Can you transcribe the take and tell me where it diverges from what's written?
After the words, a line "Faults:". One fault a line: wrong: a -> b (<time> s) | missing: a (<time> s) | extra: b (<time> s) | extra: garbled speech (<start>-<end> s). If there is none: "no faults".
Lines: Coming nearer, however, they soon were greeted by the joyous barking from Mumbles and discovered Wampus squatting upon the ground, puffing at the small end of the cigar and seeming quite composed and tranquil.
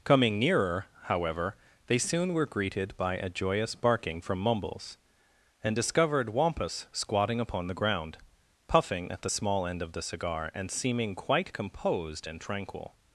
Coming nearer, however, they soon were greeted by a joyous barking from Mumbles and discovered Wampus squatting upon the ground, puffing at the small end of the cigar and seeming quite composed and tranquil.
Faults:
wrong: the -> a (3.2 s)